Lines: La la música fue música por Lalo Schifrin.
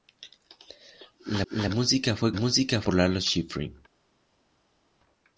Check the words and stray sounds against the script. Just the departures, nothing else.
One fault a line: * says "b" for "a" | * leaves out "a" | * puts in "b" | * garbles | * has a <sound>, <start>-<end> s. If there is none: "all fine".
all fine